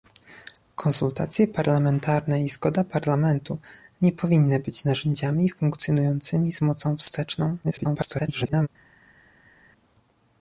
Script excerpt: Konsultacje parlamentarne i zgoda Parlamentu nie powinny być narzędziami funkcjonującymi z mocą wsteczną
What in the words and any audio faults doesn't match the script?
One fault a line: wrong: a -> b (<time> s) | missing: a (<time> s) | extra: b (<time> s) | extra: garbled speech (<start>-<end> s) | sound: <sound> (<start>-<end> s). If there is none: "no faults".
extra: garbled speech (7.6-8.7 s)